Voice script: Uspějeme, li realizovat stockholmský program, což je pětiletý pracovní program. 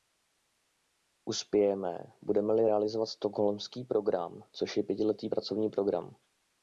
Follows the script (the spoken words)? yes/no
no